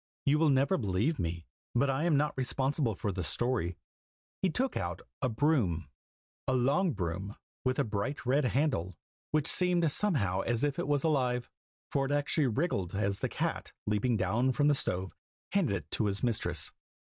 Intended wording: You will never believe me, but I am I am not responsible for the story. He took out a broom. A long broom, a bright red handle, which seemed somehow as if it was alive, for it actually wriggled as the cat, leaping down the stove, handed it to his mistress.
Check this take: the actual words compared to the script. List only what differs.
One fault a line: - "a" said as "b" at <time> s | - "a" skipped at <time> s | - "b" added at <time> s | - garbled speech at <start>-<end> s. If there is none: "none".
- "I am" skipped at 2.2 s
- "with" added at 7.7 s
- "from" added at 14.5 s